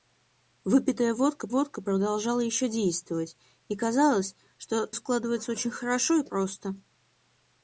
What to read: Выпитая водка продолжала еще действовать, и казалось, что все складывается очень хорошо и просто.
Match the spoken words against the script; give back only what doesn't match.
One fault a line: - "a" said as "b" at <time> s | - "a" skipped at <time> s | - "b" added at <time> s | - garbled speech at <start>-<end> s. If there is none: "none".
- "водка" added at 1.5 s
- "все" skipped at 4.9 s